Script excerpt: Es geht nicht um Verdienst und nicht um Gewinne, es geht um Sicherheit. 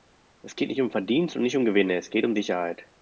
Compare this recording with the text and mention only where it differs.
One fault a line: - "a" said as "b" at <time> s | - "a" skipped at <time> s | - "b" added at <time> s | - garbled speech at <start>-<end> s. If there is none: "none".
none